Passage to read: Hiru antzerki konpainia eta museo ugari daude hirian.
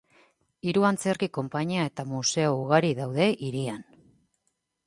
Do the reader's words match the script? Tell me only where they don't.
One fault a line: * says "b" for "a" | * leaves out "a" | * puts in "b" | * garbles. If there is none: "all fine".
all fine